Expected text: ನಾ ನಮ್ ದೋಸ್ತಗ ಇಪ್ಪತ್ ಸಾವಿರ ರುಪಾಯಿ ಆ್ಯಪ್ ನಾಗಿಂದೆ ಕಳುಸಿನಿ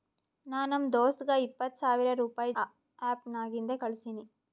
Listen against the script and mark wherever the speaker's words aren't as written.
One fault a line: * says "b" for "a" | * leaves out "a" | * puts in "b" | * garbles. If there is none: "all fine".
all fine